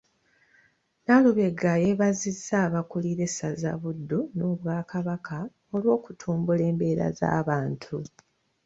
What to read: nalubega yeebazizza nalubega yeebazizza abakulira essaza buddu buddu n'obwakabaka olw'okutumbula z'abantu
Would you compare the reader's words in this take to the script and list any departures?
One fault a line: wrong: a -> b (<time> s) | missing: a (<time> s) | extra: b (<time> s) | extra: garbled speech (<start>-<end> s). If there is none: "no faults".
missing: nalubega yeebazizza (2.5 s)
missing: buddu (4.2 s)
extra: embeera (6.7 s)